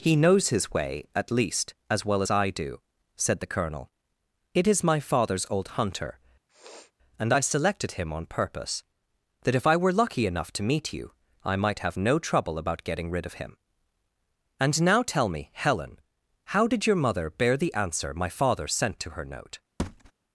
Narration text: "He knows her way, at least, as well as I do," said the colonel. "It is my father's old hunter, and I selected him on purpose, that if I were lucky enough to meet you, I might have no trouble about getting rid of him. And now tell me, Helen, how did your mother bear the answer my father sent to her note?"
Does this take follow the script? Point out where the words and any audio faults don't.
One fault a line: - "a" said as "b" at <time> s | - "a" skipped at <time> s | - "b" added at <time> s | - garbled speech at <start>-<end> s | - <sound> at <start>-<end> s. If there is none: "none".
- "her" said as "his" at 0.5 s
- sniff at 6.5-6.9 s
- thud at 19.8-20.1 s